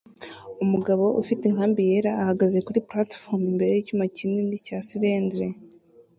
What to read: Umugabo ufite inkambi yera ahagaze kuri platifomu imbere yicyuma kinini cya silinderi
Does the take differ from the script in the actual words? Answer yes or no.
no